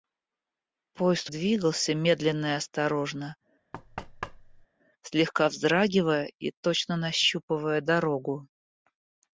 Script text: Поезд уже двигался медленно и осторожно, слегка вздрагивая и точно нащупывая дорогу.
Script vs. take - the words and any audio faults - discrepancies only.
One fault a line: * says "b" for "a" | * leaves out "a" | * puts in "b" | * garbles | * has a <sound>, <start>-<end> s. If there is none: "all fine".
* leaves out "уже"
* has a thud, 3.7-4.7 s